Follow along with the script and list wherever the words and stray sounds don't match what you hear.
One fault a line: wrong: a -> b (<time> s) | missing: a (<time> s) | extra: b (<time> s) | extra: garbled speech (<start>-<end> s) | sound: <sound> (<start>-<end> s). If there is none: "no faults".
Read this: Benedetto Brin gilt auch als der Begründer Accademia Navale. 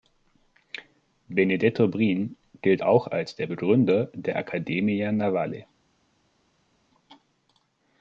extra: der (4.1 s)